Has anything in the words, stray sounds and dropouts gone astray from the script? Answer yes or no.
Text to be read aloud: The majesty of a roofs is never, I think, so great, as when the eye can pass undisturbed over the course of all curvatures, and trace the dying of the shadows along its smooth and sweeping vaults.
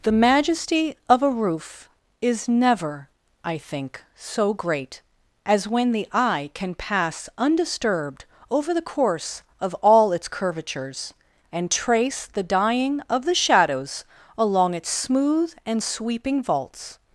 yes